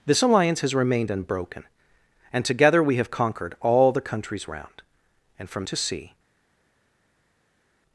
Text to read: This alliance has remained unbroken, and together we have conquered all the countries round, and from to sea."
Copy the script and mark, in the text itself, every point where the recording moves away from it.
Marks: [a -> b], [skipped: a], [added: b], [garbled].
This alliance has remained unbroken, and together we have conquered all the countries round, and from to sea."